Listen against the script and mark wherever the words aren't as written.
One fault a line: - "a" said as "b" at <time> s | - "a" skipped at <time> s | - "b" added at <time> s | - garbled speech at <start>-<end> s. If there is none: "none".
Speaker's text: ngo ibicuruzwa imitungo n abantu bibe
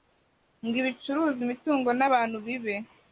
none